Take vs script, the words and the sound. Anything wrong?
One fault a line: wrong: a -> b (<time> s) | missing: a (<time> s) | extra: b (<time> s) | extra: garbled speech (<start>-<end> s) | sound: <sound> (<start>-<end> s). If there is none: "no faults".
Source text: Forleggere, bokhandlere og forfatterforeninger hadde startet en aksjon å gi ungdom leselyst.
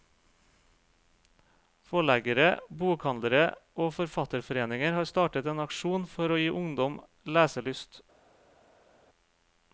wrong: hadde -> har (5.0 s)
extra: for (6.1 s)